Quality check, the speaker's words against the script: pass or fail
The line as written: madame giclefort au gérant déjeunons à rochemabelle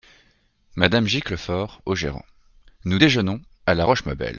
fail